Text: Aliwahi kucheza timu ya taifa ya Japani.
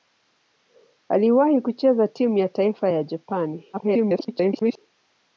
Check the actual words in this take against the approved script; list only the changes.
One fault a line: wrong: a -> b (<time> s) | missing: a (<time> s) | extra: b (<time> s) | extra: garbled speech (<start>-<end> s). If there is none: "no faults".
extra: garbled speech (3.7-4.8 s)